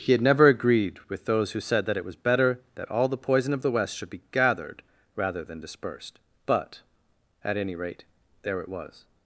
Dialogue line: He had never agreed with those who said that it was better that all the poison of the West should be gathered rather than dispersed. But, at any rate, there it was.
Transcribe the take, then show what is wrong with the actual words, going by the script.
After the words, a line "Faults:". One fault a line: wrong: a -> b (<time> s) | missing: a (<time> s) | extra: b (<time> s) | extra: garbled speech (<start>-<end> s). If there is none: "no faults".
He had never agreed with those who said that it was better that all the poison of the West should be gathered rather than dispersed. But, at any rate, there it was.
Faults:
no faults